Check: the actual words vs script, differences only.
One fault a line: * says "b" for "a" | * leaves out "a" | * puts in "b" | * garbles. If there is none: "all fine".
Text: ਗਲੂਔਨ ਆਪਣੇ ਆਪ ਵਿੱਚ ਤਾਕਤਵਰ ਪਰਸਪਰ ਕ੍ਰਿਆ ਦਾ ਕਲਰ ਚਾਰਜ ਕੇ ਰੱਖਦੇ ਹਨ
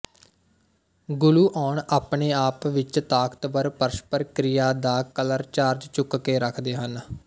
* puts in "ਚੁੱਕ"